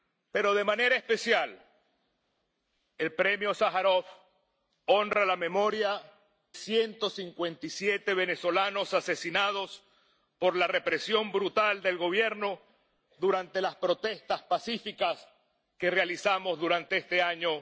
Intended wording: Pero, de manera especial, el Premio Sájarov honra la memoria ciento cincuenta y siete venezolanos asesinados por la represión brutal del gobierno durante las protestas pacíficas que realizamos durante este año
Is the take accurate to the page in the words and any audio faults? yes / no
yes